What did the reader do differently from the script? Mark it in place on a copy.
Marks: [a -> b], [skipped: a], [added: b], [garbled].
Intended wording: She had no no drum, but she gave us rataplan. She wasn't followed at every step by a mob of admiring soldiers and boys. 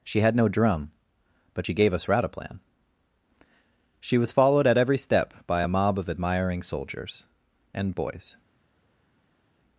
She had no [skipped: no] drum, but she gave us rataplan. She [wasn't -> was] followed at every step by a mob of admiring soldiers and boys.